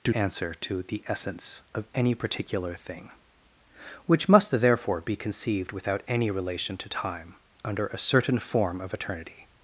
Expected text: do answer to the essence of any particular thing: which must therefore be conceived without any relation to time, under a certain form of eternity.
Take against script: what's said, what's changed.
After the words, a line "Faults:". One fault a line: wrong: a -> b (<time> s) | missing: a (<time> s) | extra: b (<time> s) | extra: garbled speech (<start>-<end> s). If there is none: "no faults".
do answer to the essence of any particular thing: which must therefore be conceived without any relation to time, under a certain form of eternity.
Faults:
no faults